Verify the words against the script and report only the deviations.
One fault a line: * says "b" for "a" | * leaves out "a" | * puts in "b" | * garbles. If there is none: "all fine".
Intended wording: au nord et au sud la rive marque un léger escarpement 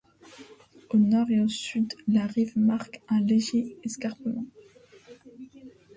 all fine